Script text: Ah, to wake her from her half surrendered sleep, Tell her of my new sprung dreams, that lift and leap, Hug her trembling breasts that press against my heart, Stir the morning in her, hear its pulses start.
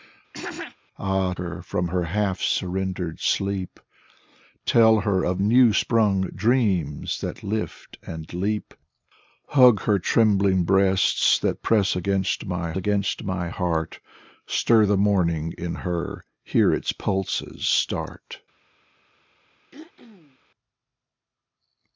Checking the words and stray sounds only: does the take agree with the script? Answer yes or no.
no